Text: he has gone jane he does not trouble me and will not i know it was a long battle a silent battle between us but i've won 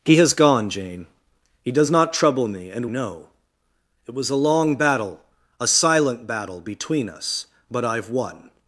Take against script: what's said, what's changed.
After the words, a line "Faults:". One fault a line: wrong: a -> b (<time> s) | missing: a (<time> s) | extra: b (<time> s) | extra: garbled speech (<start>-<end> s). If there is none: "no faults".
he has gone jane he does not trouble me and know it was a long battle a silent battle between us but i've won
Faults:
missing: will not i (2.9 s)